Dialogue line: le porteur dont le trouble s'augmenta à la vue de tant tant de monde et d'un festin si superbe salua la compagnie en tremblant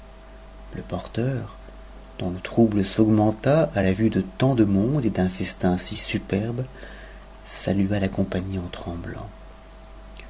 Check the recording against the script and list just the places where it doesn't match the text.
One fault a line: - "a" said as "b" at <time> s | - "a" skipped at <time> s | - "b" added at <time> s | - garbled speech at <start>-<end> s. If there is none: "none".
- "tant" skipped at 4.5 s